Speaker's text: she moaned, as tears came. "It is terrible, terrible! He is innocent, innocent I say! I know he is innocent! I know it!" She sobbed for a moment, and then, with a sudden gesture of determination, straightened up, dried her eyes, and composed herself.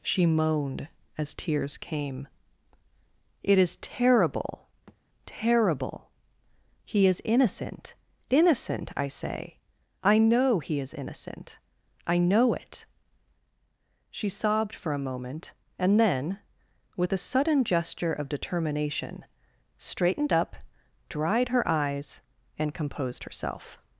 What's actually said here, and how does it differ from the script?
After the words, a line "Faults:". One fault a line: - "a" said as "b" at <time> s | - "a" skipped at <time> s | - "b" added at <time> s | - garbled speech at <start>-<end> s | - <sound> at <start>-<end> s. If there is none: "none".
she moaned, as tears came. "It is terrible, terrible! He is innocent, innocent I say! I know he is innocent! I know it!" She sobbed for a moment, and then, with a sudden gesture of determination, straightened up, dried her eyes, and composed herself.
Faults:
- thud at 4.9-5.0 s